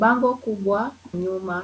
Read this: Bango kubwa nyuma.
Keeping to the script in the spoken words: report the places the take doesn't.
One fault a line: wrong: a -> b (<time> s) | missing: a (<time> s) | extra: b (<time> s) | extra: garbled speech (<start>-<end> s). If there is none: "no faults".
no faults